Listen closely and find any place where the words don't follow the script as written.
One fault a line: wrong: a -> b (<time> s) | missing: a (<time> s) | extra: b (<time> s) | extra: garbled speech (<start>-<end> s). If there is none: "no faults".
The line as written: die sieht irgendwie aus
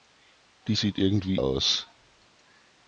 no faults